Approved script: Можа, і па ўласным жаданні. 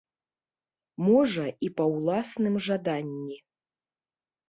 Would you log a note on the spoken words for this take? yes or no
no